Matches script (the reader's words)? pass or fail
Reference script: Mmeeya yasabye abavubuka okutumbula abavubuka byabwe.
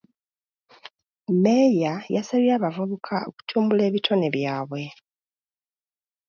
fail